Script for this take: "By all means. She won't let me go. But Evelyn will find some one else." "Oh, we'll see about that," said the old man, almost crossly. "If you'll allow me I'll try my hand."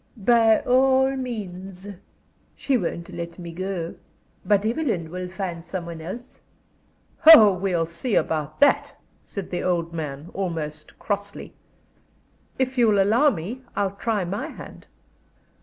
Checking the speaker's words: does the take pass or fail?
pass